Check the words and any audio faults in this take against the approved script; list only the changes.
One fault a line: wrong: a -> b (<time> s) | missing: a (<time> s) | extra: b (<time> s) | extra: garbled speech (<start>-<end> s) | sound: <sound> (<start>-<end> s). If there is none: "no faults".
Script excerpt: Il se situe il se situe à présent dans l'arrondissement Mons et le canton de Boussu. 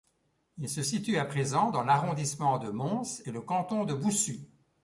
missing: il se situe (1.2 s)
extra: de (2.6 s)